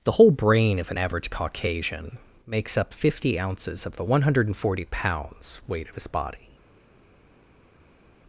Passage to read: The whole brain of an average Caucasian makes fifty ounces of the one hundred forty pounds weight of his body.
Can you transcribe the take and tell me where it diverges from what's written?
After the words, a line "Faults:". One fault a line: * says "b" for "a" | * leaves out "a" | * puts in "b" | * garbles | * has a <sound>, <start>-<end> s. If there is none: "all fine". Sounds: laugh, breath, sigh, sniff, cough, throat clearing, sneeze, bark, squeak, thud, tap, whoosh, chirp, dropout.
The whole brain of an average Caucasian makes up fifty ounces of the one hundred forty pounds weight of his body.
Faults:
* puts in "up"